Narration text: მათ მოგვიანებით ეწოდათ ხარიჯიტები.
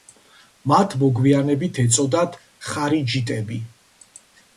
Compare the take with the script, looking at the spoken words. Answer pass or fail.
pass